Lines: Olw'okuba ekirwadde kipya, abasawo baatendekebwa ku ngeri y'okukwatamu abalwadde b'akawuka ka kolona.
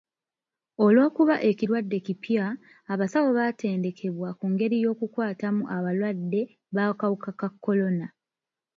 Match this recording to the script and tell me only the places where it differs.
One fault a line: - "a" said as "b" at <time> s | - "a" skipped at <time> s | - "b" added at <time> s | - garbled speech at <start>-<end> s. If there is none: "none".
none